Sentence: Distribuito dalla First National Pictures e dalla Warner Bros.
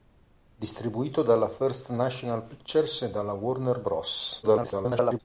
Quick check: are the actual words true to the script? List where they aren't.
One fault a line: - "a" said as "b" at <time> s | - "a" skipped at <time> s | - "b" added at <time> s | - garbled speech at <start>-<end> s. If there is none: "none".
- garbled speech at 4.4-5.2 s